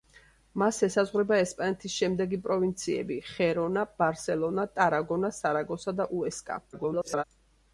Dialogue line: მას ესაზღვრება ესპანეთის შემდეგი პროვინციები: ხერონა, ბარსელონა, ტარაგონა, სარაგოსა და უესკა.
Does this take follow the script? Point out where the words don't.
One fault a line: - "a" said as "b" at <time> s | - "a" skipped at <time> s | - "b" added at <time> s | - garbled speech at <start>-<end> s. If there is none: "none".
- garbled speech at 6.7-7.2 s